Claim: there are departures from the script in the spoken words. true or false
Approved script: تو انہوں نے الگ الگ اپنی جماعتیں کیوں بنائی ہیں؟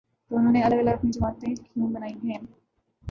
false